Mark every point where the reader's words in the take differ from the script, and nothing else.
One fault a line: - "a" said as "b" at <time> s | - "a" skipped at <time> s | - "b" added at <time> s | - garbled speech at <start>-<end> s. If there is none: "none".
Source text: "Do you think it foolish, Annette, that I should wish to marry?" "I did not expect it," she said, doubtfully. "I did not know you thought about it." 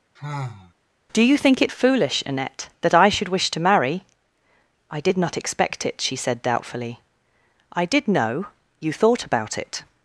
- "not" skipped at 8.1 s